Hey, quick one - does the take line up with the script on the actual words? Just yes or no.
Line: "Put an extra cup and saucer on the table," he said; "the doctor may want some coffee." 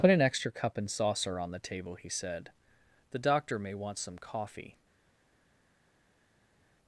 yes